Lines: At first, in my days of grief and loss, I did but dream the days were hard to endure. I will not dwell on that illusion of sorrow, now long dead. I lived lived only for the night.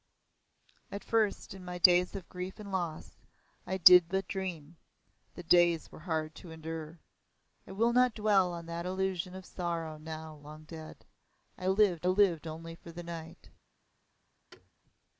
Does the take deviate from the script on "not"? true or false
false